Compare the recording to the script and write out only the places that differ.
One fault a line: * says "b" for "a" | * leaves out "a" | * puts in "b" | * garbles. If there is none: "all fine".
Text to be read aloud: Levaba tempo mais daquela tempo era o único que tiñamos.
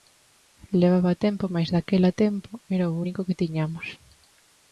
all fine